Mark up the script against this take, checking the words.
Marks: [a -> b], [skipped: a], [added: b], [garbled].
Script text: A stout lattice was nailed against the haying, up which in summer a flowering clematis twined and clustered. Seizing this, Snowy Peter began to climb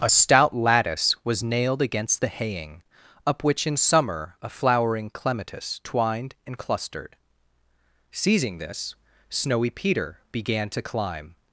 A stout lattice was nailed against the haying, up which in summer a flowering clematis twined and clustered. Seizing this, Snowy Peter began to climb